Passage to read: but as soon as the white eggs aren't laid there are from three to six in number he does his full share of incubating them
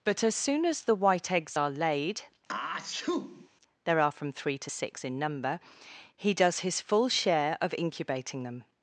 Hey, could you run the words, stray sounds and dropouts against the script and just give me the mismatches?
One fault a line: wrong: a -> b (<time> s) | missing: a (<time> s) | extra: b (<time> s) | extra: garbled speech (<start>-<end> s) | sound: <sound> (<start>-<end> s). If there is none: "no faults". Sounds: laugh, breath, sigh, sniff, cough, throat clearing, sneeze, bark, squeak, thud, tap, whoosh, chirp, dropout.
wrong: aren't -> are (1.6 s)
sound: sneeze (2.5-3.5 s)